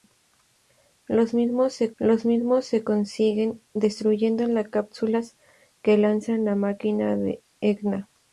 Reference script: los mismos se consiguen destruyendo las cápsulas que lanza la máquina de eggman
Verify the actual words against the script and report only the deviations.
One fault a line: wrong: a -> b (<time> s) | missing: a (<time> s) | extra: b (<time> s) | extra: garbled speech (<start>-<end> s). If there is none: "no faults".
extra: los mismos se (2.0 s)